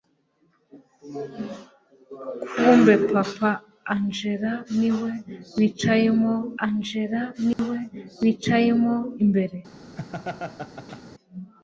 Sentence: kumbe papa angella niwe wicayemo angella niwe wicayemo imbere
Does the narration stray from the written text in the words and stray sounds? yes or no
yes